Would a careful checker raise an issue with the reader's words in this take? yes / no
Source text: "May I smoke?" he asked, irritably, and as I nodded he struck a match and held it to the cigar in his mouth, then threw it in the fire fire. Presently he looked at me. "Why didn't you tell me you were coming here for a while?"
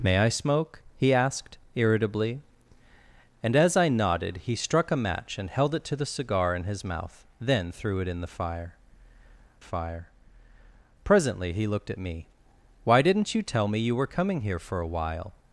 no